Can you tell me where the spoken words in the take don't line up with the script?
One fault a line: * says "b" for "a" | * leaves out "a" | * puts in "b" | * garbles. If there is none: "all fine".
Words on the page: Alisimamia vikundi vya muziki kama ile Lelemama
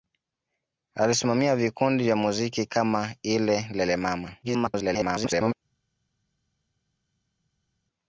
* garbles